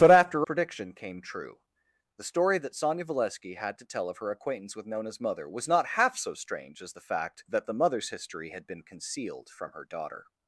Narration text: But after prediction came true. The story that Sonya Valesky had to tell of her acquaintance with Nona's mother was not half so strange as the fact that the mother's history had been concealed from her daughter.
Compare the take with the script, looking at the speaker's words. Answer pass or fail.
pass